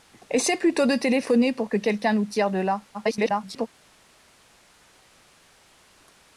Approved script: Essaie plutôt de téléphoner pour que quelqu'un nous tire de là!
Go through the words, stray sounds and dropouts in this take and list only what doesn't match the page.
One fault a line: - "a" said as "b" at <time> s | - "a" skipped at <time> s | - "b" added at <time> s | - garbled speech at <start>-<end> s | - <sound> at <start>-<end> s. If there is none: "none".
- garbled speech at 2.9-3.7 s